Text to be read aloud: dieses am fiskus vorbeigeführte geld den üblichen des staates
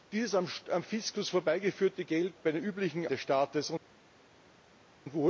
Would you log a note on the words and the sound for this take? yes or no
no